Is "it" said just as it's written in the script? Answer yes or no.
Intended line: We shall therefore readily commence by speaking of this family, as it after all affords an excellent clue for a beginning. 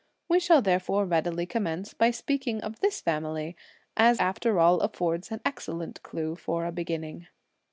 no